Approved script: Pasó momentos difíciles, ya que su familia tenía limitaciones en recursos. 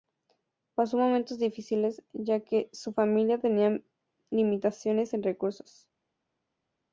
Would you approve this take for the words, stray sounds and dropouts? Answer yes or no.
yes